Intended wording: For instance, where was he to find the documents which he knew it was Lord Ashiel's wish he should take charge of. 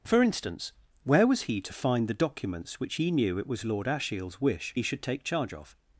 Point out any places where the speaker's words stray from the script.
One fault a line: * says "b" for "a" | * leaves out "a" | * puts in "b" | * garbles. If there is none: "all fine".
all fine